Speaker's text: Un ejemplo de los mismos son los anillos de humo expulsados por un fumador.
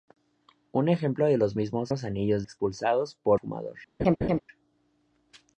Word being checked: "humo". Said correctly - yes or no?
no